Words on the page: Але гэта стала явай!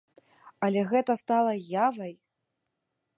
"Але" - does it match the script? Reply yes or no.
yes